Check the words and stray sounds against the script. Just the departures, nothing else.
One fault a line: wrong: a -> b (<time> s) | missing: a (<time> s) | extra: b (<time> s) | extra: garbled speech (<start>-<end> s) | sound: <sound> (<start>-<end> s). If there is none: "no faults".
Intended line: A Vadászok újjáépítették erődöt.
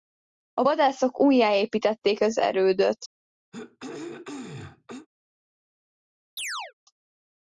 extra: az (2.2 s)
sound: throat clearing (3.5-5.1 s)
sound: chirp (6.4-6.7 s)